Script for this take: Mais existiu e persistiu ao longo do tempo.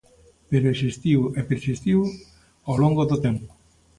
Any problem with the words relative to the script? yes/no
yes